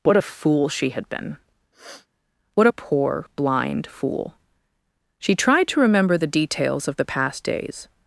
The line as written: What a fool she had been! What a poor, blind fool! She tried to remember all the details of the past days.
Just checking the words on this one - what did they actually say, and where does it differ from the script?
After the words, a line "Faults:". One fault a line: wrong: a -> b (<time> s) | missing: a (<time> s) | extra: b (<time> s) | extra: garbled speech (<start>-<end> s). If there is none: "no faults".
What a fool she had been! What a poor, blind fool! She tried to remember the details of the past days.
Faults:
missing: all (6.2 s)